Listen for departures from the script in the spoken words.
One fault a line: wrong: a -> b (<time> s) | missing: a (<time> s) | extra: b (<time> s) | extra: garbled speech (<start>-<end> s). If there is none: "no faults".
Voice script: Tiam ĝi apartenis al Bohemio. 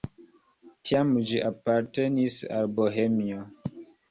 no faults